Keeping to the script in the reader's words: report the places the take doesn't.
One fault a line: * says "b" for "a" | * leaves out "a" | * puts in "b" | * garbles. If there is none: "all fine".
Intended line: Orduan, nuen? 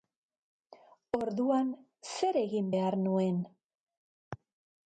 * puts in "zer egin behar"